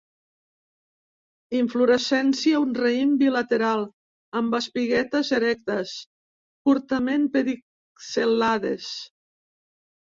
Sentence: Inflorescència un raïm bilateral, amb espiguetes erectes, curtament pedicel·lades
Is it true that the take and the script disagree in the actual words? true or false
false